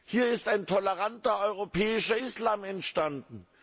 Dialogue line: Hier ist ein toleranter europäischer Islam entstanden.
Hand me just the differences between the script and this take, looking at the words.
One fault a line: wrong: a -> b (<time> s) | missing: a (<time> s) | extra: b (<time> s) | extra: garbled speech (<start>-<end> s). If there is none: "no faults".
no faults